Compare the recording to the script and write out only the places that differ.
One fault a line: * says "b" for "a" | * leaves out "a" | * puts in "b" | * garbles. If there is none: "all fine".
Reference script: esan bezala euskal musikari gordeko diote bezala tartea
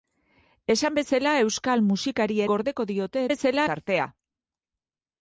all fine